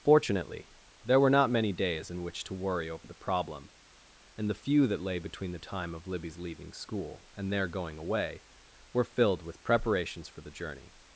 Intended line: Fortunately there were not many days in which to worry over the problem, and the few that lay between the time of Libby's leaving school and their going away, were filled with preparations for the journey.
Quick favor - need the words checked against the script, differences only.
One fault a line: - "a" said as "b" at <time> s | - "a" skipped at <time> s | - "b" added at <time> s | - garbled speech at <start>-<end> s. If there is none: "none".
none